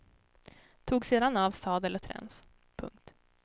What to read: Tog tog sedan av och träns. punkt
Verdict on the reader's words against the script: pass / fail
fail